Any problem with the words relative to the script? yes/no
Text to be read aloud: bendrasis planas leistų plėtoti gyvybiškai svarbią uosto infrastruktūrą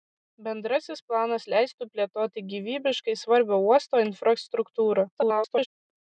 yes